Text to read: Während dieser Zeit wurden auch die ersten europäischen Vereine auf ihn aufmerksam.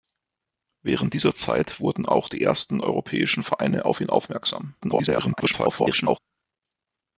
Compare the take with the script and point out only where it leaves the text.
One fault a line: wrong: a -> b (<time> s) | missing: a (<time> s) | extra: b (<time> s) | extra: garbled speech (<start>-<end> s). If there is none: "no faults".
extra: garbled speech (4.8-6.2 s)